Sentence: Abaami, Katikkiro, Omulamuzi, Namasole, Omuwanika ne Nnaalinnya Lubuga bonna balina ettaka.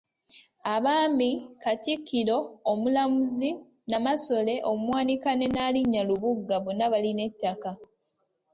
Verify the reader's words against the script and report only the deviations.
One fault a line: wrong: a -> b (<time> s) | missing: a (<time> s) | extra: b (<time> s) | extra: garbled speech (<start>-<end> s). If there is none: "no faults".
no faults